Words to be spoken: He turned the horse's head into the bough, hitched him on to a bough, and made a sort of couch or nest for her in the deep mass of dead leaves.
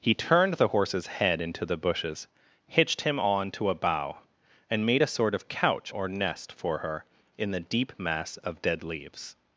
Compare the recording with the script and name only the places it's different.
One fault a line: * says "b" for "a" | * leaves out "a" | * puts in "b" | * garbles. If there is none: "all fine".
* says "bushes" for "bough"